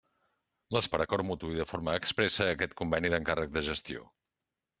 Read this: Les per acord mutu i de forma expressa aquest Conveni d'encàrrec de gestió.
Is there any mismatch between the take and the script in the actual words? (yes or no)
no